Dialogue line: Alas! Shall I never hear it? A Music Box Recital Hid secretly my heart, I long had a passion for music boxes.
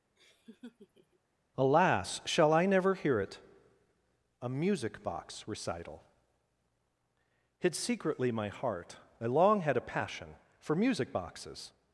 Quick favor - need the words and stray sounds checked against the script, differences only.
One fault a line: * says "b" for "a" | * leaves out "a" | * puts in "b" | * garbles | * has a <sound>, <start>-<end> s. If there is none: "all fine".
* has a laugh, 0.2-1.2 s